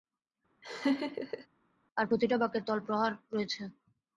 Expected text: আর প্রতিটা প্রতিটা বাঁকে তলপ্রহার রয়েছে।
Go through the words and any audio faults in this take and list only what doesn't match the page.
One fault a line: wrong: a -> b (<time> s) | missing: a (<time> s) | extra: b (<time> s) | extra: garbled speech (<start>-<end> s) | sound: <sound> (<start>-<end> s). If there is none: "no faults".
sound: laugh (0.6-1.5 s)
missing: প্রতিটা (2.4 s)